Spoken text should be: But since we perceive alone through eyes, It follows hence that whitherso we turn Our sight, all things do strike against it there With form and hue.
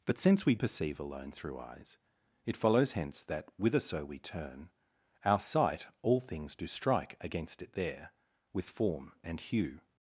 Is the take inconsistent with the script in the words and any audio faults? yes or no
no